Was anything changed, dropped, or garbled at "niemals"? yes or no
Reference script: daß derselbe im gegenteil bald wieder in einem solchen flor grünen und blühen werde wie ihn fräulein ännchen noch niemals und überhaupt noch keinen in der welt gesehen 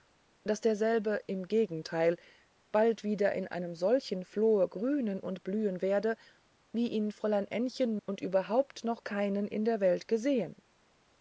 yes